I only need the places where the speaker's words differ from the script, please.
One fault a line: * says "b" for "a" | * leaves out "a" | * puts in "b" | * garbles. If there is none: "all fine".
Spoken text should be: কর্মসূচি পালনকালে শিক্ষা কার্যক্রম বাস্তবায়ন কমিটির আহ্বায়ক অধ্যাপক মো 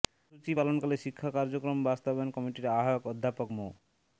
all fine